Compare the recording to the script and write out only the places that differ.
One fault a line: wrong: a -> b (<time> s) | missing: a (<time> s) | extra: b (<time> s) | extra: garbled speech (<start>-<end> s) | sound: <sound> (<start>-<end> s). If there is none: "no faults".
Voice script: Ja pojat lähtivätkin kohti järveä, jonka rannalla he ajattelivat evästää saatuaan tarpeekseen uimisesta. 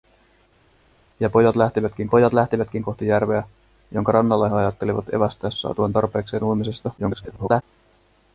extra: pojat lähtivätkin (2.1 s)
extra: garbled speech (7.0-7.6 s)